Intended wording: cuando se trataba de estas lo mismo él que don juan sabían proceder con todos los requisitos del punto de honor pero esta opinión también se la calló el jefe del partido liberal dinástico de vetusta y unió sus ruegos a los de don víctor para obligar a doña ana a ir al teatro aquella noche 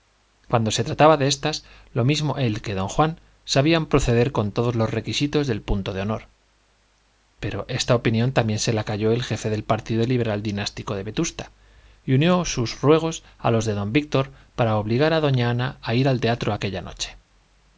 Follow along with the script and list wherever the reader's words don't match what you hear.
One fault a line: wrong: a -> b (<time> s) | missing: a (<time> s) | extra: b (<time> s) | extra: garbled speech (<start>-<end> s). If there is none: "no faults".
no faults